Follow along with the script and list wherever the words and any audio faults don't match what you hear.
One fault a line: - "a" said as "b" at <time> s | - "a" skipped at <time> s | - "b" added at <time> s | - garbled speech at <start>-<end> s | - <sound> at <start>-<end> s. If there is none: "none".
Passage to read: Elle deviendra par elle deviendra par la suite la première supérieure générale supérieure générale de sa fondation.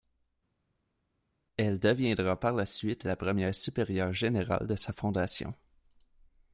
- "elle deviendra par" skipped at 2.5 s
- "supérieure générale" skipped at 4.7 s